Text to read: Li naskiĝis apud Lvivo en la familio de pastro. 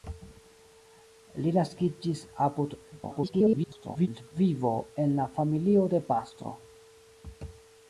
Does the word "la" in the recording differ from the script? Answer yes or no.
no